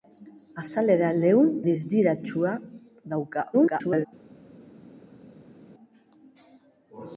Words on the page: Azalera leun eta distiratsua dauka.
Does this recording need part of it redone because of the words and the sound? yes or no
yes